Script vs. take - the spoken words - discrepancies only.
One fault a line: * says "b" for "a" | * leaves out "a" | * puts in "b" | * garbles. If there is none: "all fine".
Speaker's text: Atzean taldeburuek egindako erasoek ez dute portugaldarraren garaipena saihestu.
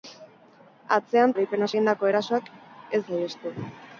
* says "garaipena" for "taldeburuek"
* leaves out "dute portugaldarraren garaipena"